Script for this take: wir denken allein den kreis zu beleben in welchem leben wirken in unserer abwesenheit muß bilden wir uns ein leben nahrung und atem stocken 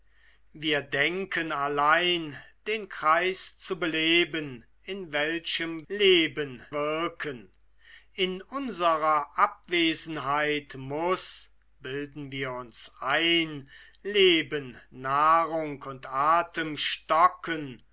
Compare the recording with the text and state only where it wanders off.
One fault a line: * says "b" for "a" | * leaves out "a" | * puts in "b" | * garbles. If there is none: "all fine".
all fine